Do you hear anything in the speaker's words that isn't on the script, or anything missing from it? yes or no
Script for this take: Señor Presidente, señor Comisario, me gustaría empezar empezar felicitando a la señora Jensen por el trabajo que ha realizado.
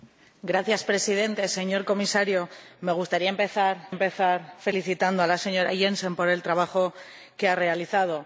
no